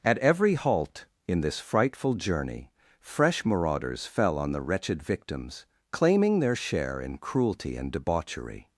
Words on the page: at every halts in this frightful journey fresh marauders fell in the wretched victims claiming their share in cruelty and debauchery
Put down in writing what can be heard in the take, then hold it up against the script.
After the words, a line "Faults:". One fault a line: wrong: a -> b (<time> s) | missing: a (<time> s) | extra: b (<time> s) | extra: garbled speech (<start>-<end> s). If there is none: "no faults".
at every halt in this frightful journey fresh marauders fell on the wretched victims claiming their share in cruelty and debauchery
Faults:
wrong: halts -> halt (0.5 s)
wrong: in -> on (4.4 s)